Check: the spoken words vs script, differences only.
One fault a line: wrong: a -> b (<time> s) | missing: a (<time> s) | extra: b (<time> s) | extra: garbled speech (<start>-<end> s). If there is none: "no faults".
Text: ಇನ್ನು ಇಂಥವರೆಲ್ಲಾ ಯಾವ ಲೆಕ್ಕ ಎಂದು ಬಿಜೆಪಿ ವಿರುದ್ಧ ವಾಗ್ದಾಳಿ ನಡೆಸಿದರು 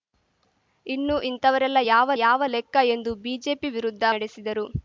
extra: ಯಾವ (2.2 s)
missing: ವಾಗ್ದಾಳಿ (4.0 s)